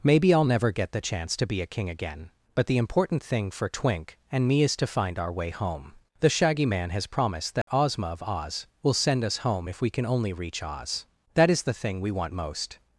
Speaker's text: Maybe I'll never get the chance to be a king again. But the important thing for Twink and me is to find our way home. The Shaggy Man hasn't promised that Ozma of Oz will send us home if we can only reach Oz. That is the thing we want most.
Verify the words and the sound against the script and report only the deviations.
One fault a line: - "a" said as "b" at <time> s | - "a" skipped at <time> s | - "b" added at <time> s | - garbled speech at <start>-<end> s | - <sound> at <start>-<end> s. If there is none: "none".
- "hasn't" said as "has" at 6.9 s
- dropout at 7.6-7.7 s